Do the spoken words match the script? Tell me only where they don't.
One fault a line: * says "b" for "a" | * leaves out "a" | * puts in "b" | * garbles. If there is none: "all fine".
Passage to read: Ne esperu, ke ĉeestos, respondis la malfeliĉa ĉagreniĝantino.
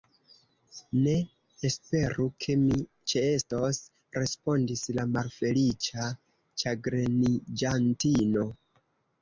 * puts in "mi"